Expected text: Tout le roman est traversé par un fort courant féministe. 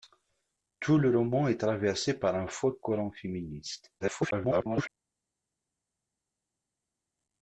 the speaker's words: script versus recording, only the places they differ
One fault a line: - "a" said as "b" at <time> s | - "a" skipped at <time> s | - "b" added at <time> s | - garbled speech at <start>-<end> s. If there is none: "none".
- garbled speech at 4.0-4.9 s